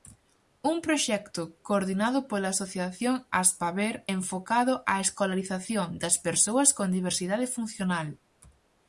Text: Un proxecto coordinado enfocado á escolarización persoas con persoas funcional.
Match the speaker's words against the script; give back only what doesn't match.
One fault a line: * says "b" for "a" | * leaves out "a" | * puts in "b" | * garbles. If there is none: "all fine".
* puts in "pola asociación Aspaber"
* puts in "das"
* says "diversidade" for "persoas"